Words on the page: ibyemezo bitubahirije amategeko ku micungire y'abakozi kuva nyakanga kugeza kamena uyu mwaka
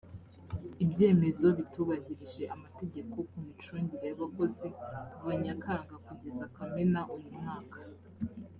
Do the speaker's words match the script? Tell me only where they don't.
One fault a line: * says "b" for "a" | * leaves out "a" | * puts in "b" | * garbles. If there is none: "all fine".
all fine